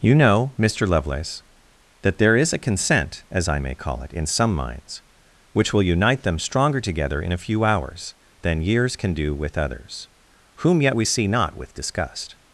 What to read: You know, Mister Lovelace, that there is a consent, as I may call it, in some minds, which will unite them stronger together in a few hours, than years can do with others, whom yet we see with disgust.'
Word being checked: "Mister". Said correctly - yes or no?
yes